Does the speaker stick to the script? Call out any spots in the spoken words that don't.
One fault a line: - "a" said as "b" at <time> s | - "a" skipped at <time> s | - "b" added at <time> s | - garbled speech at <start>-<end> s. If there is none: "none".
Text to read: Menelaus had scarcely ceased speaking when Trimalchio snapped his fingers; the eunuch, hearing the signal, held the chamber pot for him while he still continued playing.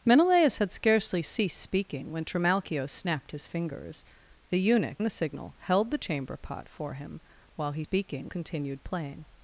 - "hearing" skipped at 5.0 s
- "still" said as "speaking" at 7.8 s